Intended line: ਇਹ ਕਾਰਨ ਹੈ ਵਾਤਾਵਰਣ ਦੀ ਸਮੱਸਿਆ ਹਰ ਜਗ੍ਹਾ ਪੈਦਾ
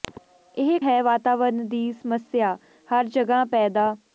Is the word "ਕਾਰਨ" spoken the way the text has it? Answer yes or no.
no